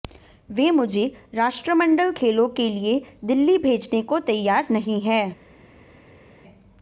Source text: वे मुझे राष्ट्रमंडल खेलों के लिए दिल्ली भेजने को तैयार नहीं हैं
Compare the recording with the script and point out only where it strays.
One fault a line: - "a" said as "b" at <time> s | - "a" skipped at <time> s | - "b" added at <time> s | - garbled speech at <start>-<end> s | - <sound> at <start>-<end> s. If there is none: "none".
none